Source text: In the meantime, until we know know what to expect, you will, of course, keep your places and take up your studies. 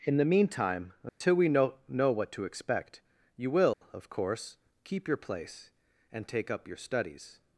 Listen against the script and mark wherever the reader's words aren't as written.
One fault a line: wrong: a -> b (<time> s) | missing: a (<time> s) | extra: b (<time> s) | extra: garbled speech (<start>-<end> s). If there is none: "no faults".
wrong: places -> place (5.2 s)